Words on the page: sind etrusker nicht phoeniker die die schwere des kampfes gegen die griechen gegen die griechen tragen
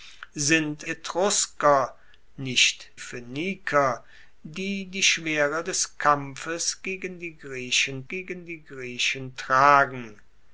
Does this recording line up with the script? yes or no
yes